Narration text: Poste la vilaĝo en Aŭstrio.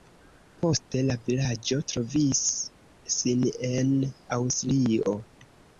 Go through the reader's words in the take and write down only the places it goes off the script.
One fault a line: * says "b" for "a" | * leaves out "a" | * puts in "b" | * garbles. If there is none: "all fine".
* puts in "trovis sin"